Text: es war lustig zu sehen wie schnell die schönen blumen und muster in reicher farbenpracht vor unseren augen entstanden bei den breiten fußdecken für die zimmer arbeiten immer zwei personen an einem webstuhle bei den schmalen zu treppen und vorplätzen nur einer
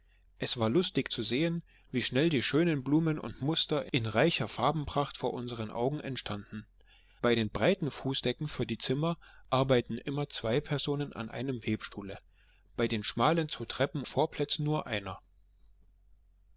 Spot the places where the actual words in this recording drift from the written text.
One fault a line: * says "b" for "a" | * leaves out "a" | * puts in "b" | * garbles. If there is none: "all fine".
* leaves out "und"